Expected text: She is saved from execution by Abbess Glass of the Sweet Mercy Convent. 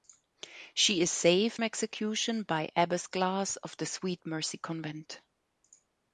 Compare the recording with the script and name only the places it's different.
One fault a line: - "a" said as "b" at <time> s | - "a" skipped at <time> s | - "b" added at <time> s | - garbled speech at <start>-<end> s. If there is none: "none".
- "from" skipped at 1.6 s